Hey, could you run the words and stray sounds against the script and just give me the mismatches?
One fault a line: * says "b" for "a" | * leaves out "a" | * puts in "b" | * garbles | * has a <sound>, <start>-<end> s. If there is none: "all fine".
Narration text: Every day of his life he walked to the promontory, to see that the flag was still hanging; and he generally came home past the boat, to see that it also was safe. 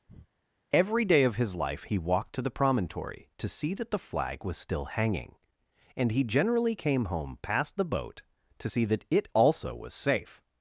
* has a breath, 0.1-0.3 s